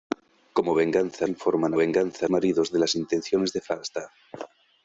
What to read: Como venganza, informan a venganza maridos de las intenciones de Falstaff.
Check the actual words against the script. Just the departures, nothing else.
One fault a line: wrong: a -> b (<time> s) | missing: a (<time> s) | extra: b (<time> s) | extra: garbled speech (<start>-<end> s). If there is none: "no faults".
no faults